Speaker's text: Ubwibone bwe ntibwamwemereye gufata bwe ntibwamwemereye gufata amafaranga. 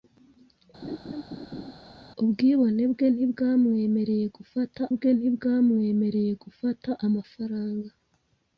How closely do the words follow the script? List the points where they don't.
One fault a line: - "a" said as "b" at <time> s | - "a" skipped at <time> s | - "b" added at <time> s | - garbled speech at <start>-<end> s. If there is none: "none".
none